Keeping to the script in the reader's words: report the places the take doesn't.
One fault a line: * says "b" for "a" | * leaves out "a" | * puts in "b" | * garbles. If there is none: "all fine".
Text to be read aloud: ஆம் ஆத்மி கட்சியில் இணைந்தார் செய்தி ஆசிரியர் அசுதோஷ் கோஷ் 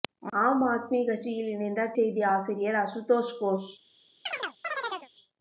all fine